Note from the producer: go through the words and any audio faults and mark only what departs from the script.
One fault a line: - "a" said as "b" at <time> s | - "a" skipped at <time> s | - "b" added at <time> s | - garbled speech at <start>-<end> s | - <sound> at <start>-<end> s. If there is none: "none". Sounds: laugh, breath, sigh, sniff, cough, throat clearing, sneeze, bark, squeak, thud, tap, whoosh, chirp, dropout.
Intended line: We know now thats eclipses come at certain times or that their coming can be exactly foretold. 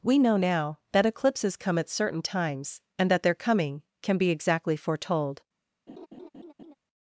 - "thats" said as "that" at 0.9 s
- "or" said as "and" at 3.0 s
- laugh at 5.9-6.7 s